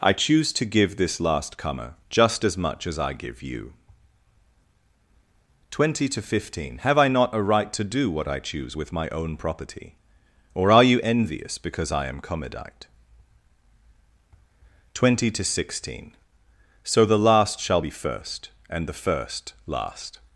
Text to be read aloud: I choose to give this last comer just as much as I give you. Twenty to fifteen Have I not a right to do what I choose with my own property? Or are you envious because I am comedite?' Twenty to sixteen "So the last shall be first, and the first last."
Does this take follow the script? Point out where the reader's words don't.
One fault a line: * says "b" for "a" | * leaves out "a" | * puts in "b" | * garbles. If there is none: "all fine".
all fine